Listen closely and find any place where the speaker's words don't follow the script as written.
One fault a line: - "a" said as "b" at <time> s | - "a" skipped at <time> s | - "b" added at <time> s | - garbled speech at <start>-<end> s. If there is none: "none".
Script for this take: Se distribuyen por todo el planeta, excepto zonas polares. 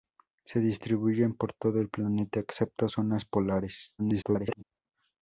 - garbled speech at 4.0-4.6 s